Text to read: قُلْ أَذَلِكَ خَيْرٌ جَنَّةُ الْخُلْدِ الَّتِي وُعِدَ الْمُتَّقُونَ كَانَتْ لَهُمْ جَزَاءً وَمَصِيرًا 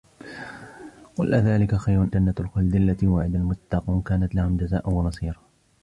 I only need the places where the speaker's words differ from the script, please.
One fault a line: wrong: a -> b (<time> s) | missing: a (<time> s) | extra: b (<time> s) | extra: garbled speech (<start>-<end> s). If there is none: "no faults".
no faults